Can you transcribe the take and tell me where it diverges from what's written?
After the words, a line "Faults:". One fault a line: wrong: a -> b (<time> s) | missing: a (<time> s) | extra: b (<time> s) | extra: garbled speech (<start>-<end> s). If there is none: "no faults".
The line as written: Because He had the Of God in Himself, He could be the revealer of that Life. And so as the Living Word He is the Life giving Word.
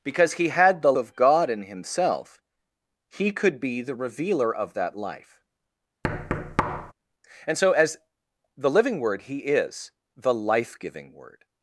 Because He had the Of God in Himself, He could be the revealer of that Life. And so as the Living Word He is the Life giving Word.
Faults:
no faults